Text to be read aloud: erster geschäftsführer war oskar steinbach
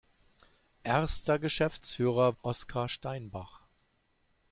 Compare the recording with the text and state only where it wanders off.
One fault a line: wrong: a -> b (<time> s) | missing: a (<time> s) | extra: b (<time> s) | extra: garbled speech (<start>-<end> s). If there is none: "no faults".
missing: war (2.4 s)